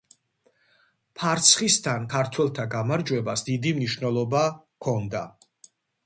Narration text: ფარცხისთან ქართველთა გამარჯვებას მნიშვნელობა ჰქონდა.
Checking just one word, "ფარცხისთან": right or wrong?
right